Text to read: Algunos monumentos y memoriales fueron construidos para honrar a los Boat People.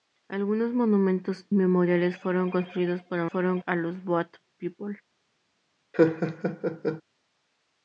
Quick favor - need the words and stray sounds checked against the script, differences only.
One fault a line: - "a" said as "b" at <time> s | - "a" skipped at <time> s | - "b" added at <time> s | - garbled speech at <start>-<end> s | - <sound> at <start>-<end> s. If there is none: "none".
- "y" skipped at 1.5 s
- "honrar" said as "fueron" at 3.2 s
- laugh at 5.9-7.0 s